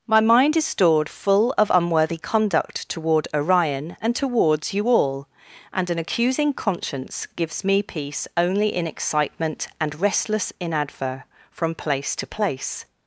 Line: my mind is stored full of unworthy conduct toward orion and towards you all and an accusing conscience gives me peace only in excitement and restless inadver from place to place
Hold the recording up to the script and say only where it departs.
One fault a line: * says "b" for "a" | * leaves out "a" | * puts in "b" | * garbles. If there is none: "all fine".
all fine